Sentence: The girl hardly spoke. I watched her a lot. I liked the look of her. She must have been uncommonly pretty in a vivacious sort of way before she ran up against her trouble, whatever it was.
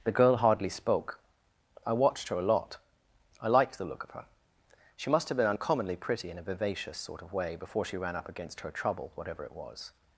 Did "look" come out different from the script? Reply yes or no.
no